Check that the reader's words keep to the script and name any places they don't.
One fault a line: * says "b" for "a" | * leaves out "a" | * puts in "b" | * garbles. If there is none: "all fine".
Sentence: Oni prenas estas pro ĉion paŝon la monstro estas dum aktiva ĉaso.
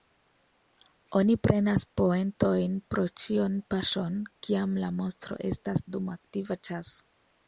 * says "poentojn" for "estas"
* puts in "kiam"